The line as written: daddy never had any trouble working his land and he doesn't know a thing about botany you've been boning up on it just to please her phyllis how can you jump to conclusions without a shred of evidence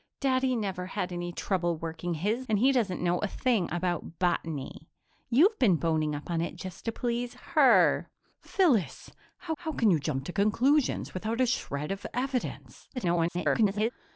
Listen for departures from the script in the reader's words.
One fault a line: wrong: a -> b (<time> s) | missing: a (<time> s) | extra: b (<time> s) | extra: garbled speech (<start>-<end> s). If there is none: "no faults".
missing: land (2.5 s)
extra: how (9.6 s)
extra: garbled speech (13.0-13.9 s)